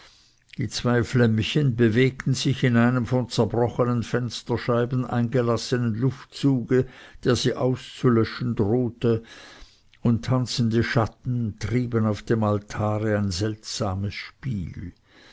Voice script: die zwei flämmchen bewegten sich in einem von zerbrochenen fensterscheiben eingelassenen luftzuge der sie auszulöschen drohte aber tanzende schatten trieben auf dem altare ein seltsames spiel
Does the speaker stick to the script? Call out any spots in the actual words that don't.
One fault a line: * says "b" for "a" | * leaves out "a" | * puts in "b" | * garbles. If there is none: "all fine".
* says "und" for "aber"